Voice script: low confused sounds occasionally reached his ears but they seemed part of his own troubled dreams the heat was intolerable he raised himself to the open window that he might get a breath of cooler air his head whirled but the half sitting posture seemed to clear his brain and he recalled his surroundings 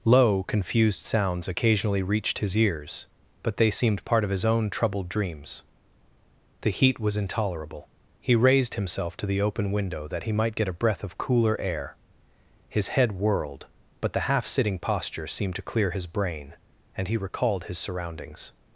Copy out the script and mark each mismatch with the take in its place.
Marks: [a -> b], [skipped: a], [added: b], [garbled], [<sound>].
low confused sounds occasionally reached his ears but they seemed part of his own troubled dreams the heat was intolerable he raised himself to the open window that he might get a breath of cooler air his head whirled but the half sitting posture seemed to clear his brain and he recalled his surroundings